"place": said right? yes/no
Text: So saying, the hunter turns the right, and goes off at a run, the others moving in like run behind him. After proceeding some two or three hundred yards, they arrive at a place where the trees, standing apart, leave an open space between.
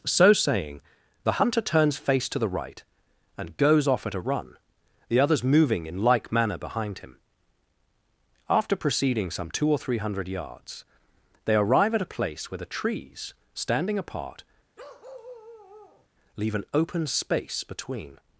yes